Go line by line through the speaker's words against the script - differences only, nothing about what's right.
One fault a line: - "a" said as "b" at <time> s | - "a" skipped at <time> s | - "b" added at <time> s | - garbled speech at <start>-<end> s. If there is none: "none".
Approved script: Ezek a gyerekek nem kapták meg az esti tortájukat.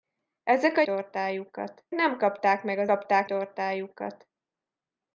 - "gyerekek" said as "tortájukat" at 0.8 s
- "esti" said as "kapták" at 2.8 s